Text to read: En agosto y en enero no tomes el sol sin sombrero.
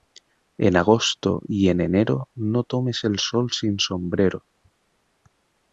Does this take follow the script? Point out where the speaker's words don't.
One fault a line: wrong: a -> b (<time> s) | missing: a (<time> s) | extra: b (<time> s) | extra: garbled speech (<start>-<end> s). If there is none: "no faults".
no faults